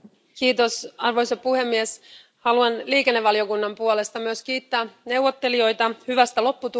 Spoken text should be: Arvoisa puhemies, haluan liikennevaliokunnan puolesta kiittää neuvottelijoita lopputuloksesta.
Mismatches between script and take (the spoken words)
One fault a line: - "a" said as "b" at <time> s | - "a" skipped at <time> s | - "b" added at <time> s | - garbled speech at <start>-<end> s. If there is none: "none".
- "myös" added at 4.2 s
- "hyvästä" added at 6.1 s